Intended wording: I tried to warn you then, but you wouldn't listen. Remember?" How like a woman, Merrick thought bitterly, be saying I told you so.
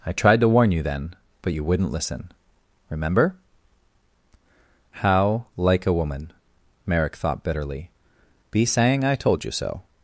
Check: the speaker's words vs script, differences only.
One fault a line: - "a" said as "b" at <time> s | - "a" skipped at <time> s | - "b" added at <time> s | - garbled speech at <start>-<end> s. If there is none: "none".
none